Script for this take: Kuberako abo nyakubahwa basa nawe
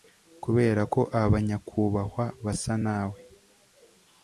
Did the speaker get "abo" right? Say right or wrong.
wrong